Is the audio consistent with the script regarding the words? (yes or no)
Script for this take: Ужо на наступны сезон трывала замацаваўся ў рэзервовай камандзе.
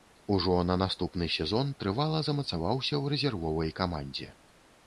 yes